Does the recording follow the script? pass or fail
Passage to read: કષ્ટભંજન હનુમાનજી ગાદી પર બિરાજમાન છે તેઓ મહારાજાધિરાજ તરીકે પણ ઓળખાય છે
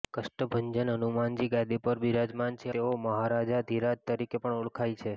pass